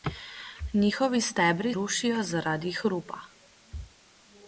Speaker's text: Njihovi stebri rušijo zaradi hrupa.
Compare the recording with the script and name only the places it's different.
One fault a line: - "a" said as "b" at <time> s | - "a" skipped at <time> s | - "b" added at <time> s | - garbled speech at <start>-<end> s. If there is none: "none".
none